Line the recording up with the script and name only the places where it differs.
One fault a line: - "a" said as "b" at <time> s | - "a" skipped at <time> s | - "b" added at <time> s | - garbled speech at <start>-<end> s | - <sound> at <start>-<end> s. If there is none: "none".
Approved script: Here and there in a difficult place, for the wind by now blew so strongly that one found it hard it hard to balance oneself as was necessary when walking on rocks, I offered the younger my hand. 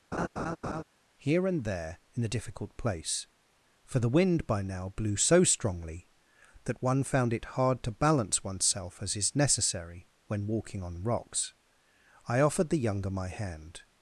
- laugh at 0.1-0.8 s
- "it hard" skipped at 7.8 s
- "was" said as "is" at 9.1 s